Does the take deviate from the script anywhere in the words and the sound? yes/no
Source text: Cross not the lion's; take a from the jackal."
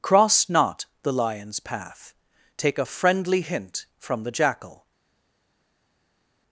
yes